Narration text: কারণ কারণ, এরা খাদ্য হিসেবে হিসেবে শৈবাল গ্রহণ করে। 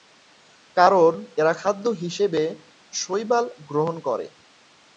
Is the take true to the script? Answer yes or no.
no